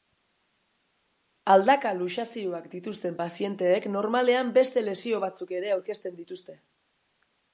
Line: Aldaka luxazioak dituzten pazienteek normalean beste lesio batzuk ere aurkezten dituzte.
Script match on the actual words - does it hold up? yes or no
yes